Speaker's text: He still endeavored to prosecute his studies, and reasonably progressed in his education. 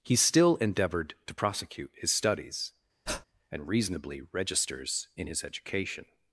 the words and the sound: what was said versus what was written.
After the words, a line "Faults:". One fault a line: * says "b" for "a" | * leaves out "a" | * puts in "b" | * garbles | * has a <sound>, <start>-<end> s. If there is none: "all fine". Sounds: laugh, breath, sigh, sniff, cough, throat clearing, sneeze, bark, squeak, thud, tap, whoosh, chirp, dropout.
He still endeavored to prosecute his studies, and reasonably registers in his education.
Faults:
* has a breath, 3.1-3.3 s
* says "registers" for "progressed"